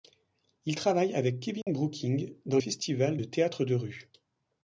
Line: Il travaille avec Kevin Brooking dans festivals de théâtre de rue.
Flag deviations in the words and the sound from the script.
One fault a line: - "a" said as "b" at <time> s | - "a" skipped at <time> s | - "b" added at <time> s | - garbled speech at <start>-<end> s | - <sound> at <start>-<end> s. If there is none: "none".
- dropout at 1.6-1.7 s